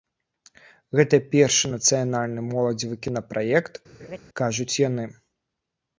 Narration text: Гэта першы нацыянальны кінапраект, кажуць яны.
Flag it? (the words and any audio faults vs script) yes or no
yes